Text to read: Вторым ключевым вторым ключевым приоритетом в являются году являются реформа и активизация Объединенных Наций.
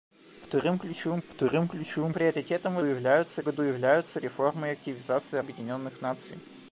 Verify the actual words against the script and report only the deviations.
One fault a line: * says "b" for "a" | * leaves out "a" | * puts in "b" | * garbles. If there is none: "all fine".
all fine